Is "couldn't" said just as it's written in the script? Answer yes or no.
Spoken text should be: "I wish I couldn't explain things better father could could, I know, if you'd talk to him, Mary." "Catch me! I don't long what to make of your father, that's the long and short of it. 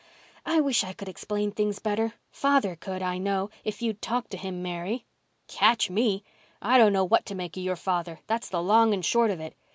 no